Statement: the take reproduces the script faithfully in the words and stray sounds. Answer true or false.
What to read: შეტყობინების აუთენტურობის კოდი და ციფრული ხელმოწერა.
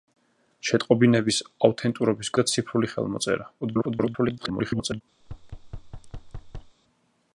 false